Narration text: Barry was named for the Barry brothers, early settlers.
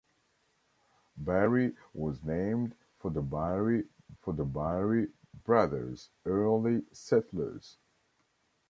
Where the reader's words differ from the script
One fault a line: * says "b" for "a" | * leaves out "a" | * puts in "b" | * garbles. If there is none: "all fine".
* puts in "for the Barry"